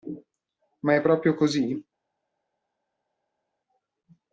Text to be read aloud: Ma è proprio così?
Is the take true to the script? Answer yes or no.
yes